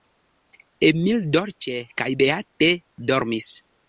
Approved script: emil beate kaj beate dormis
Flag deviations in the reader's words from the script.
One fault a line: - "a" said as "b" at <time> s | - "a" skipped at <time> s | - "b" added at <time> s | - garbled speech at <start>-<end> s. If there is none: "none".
- "beate" said as "dolĉe" at 1.4 s